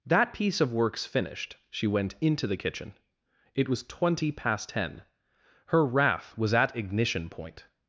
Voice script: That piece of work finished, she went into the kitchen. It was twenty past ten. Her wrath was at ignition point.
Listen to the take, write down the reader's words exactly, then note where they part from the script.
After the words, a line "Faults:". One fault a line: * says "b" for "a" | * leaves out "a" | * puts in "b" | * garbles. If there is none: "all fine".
That piece of works finished, she went into the kitchen. It was twenty past ten. Her wrath was at ignition point.
Faults:
* says "works" for "work"